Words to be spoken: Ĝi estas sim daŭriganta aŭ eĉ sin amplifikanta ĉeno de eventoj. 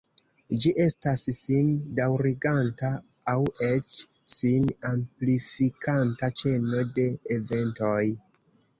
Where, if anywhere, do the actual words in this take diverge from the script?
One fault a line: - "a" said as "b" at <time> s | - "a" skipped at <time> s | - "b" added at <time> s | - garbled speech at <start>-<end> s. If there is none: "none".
none